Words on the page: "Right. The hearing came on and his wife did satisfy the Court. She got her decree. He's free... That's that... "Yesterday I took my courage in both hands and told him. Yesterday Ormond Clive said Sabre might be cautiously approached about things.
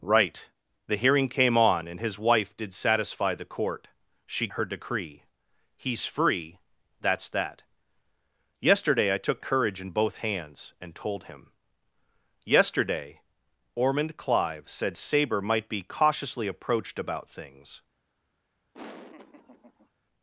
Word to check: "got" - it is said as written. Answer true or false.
false